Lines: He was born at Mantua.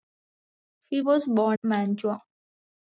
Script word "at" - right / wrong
wrong